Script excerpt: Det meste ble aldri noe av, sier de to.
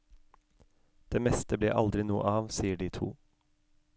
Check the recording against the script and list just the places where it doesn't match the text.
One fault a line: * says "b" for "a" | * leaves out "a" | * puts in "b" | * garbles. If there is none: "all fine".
all fine